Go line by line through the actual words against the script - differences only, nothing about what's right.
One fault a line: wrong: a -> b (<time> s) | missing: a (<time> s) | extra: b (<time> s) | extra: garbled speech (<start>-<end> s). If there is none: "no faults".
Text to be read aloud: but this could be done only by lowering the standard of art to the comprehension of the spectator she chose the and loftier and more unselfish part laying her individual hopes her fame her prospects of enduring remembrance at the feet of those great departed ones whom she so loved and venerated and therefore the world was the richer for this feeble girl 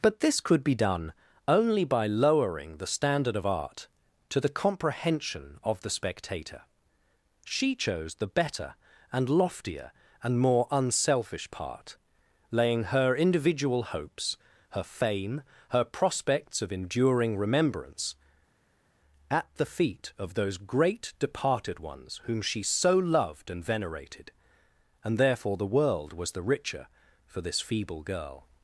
extra: better (8.3 s)